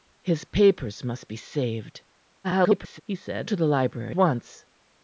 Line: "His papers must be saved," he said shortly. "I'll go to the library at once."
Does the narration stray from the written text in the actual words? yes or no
yes